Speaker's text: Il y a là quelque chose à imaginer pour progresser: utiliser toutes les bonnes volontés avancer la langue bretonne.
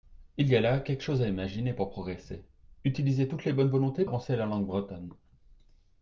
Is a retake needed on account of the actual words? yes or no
no